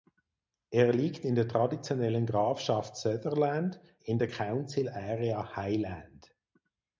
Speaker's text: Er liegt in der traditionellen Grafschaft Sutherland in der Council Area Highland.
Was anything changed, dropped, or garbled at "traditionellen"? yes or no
no